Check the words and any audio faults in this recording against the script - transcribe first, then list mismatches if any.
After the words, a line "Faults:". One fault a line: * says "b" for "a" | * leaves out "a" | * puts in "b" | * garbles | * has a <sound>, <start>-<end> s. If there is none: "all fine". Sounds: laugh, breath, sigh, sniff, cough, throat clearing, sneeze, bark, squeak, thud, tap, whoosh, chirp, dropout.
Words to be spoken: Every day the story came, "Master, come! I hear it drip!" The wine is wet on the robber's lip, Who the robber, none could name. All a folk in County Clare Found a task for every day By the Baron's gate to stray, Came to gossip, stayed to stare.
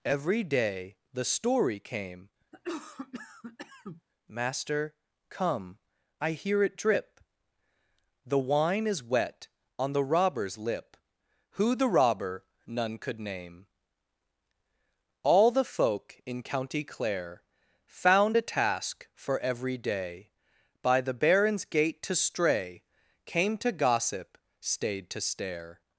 Every day the story came, "Master, come! I hear it drip!" The wine is wet on the robber's lip, Who the robber, none could name. All the folk in County Clare Found a task for every day By the Baron's gate to stray, Came to gossip, stayed to stare.
Faults:
* has a cough, 2.5-4.0 s
* says "the" for "a"